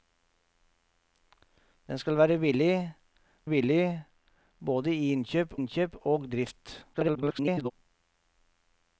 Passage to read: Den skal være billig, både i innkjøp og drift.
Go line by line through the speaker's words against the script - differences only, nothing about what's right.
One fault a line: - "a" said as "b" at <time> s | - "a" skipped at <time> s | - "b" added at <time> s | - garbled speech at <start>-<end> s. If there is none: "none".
- "billig" added at 3.5 s
- "innkjøp" added at 5.5 s
- garbled speech at 6.9-7.7 s